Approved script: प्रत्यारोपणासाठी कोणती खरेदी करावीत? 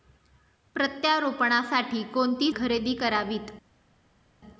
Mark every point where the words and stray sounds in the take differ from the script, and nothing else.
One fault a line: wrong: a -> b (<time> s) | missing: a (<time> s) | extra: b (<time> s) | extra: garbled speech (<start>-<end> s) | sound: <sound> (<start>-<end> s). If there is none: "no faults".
no faults